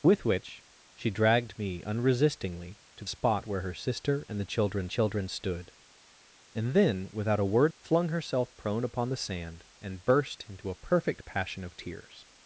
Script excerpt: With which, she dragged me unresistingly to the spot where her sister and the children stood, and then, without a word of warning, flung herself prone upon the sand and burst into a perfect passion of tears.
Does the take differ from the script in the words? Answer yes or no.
yes